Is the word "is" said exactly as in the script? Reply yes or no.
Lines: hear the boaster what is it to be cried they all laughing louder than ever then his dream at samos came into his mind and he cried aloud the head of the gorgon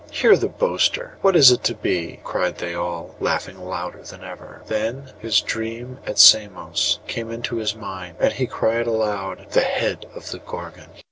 yes